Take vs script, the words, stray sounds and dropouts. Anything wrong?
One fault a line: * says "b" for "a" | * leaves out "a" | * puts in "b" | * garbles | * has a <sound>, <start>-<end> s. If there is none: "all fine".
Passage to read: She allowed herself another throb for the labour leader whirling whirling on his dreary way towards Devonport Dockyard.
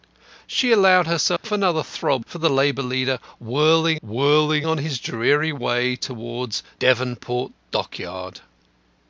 * has a dropout, 1.4-1.4 s